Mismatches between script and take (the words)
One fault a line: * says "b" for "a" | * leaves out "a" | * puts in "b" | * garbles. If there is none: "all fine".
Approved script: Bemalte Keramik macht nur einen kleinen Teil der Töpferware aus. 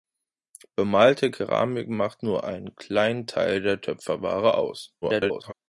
* garbles